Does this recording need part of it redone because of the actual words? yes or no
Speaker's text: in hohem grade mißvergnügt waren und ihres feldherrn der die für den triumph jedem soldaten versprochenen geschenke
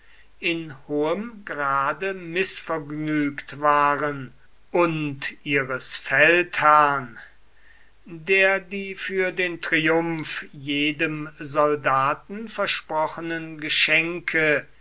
no